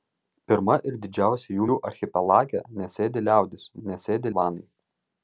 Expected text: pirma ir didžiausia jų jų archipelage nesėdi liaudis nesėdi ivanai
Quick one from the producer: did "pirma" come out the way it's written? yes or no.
yes